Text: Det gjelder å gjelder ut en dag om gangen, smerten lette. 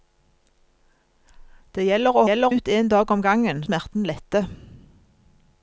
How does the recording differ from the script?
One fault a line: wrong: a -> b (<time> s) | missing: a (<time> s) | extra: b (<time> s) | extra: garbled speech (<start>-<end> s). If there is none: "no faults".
no faults